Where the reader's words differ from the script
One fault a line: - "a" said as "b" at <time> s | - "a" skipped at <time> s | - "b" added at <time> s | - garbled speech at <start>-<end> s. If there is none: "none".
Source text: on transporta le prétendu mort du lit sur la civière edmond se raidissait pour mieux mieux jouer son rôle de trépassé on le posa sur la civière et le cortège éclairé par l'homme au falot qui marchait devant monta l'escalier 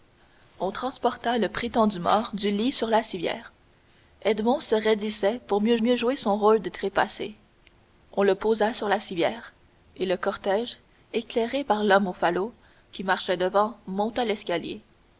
none